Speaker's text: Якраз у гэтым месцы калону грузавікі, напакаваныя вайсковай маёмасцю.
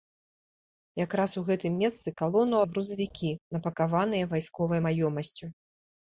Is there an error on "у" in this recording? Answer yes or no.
no